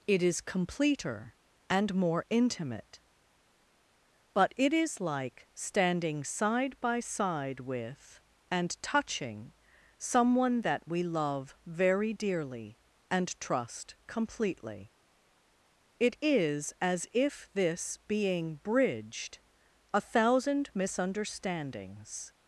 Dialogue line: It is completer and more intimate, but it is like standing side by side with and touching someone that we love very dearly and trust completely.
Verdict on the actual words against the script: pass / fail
fail